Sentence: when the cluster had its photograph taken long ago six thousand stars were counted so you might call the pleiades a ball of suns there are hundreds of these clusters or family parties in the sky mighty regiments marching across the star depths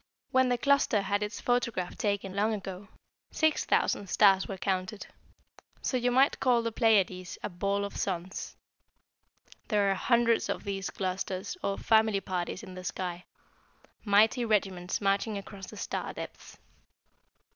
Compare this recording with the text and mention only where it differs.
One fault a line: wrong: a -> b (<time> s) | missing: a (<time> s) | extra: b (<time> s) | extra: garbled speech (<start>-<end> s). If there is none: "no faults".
no faults